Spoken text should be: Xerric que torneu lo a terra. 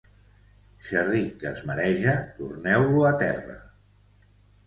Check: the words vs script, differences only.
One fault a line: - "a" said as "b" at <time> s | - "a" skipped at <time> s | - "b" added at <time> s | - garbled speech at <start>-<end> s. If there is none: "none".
- "es mareja" added at 1.5 s